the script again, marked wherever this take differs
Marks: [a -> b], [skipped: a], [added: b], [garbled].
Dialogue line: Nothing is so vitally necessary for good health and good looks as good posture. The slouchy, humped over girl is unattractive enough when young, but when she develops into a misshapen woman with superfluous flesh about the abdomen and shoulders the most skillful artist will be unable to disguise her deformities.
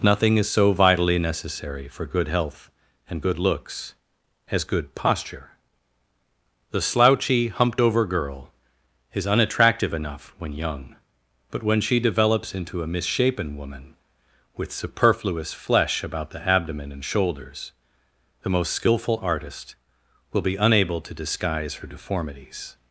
Nothing is so vitally necessary for good health and good looks as good posture. The slouchy, humped over girl is unattractive enough when young, but when she develops into a misshapen woman with superfluous flesh about the abdomen and shoulders the most skillful artist will be unable to disguise her deformities.